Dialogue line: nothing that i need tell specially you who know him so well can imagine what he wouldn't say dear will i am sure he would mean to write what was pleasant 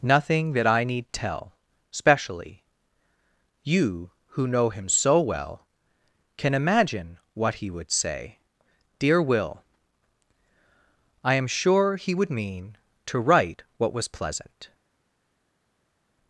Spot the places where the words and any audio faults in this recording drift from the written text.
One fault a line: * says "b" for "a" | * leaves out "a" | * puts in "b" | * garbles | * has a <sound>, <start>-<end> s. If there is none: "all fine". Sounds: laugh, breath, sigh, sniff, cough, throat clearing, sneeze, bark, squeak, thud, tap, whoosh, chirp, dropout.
* says "would" for "wouldn't"